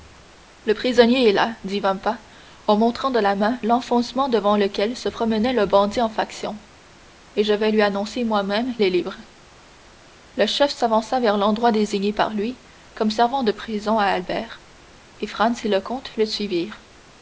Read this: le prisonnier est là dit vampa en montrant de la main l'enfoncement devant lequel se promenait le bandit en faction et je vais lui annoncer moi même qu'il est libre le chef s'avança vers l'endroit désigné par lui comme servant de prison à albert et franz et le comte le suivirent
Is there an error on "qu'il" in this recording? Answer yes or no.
yes